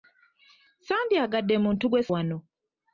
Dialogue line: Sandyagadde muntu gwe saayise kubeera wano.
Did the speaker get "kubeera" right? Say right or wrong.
wrong